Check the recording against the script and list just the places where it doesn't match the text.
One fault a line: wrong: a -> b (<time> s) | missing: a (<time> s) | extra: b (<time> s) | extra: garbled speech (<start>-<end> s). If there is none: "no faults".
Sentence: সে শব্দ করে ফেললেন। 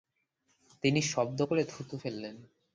wrong: সে -> তিনি (0.8 s)
extra: থুথু (1.6 s)